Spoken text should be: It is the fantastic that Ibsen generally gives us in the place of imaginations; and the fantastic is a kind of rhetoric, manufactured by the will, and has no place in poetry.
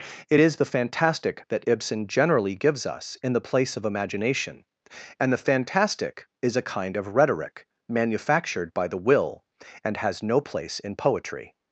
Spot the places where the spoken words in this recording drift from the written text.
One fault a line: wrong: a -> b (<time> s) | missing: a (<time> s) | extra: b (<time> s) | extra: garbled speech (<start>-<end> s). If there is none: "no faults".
wrong: imaginations -> imagination (3.8 s)